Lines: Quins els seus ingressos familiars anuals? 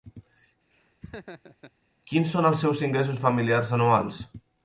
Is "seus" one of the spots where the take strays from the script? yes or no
no